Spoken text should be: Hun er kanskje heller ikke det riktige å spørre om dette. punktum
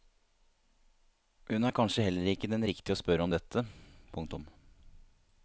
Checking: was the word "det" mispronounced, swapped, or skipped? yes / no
yes